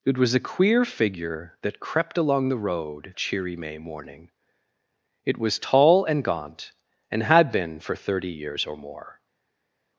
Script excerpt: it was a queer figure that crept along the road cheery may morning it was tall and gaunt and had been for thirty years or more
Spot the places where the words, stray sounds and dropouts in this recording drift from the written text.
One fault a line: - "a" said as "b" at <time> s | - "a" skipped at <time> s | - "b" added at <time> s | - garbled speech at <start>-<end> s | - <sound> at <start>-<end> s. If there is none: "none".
none